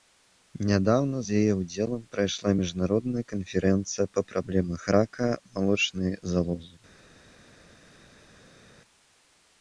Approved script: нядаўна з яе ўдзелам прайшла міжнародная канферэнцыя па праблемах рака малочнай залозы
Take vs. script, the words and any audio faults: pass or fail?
pass